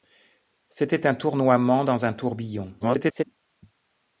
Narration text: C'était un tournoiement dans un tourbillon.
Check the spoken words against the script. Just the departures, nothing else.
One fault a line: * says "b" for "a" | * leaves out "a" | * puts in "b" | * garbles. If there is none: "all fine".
* garbles